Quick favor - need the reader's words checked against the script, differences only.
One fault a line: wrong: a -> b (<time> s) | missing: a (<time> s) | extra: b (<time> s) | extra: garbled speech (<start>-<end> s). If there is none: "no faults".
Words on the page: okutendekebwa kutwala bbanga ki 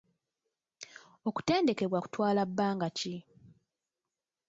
no faults